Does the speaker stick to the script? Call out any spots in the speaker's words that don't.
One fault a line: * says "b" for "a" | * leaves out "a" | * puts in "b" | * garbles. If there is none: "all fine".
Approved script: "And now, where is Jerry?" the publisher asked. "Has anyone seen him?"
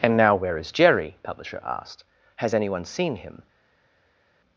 * leaves out "the"